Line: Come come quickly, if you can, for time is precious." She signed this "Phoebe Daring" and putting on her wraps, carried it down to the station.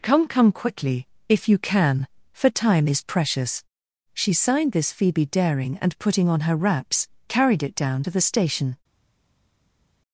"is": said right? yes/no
yes